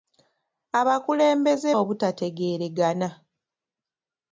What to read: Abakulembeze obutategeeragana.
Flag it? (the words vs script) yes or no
no